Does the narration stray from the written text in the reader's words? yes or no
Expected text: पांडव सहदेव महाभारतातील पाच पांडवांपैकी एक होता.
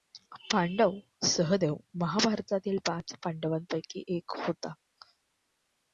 no